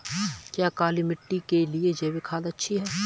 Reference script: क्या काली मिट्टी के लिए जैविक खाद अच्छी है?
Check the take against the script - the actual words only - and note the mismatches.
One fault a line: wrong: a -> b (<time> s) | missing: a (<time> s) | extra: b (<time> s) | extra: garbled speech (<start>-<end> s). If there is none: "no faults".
no faults